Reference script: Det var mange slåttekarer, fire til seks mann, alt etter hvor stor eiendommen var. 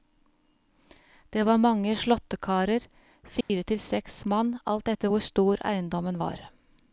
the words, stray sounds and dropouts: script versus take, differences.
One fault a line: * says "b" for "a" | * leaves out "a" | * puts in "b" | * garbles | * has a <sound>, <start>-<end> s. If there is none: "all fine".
* has a dropout, 3.4-3.5 s